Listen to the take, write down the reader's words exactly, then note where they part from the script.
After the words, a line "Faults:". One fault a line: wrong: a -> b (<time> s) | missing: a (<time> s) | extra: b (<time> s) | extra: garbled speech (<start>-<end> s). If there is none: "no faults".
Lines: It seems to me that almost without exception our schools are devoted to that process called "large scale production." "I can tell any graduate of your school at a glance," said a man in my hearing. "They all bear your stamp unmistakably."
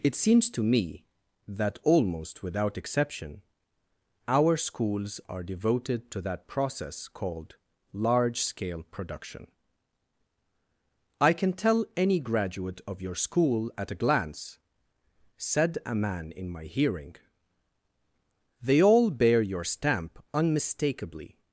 It seems to me that almost without exception our schools are devoted to that process called "large scale production." "I can tell any graduate of your school at a glance," said a man in my hearing. "They all bear your stamp unmistakably."
Faults:
no faults